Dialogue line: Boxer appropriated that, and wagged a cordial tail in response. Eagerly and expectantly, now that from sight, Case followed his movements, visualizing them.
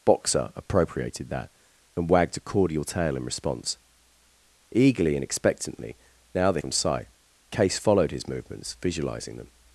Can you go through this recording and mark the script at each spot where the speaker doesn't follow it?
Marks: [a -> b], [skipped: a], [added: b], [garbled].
Boxer appropriated that, and wagged a cordial tail in response. Eagerly and expectantly, now that from sight, Case followed his movements, visualizing them.